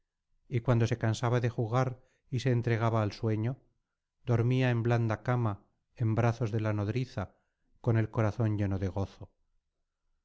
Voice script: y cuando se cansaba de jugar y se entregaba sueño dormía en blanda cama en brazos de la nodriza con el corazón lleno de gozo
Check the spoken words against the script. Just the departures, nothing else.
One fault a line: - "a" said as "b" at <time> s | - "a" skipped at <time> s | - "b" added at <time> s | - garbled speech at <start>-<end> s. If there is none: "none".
- "al" added at 3.0 s